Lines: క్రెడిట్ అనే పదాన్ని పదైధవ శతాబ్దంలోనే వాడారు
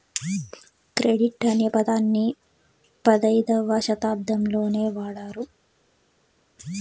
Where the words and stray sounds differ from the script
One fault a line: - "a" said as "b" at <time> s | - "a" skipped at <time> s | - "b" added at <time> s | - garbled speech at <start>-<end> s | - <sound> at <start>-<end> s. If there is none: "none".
none